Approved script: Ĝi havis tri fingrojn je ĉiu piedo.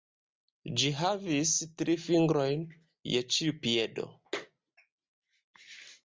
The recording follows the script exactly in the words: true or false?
true